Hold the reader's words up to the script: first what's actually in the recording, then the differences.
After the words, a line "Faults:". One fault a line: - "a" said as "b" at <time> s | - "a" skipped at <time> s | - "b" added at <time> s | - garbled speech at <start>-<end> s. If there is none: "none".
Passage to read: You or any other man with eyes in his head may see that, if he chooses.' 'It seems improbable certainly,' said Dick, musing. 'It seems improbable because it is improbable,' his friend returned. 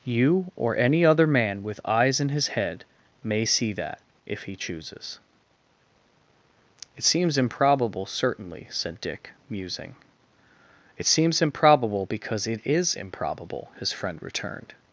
You or any other man with eyes in his head may see that, if he chooses.' 'It seems improbable certainly,' said Dick, musing. 'It seems improbable because it is improbable,' his friend returned.
Faults:
none